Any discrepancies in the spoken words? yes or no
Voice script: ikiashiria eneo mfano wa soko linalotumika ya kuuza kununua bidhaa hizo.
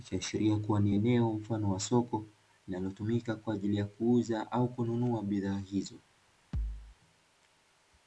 yes